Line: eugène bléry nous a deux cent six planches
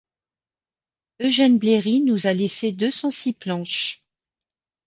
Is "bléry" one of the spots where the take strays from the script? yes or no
no